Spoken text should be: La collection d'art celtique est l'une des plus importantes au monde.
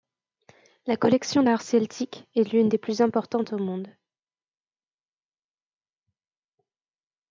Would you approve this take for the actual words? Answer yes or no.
yes